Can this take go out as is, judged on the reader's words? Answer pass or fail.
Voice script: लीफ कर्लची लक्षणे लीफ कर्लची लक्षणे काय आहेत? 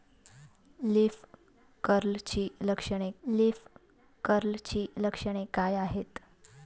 pass